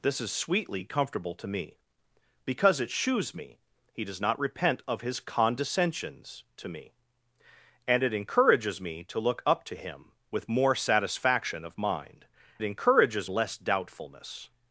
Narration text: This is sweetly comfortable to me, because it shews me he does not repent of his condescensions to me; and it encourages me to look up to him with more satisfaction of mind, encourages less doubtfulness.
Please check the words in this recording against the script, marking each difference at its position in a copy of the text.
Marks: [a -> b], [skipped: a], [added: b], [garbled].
This is sweetly comfortable to me, because it shews me he does not repent of his condescensions to me; and it encourages me to look up to him with more satisfaction of mind, encourages less doubtfulness.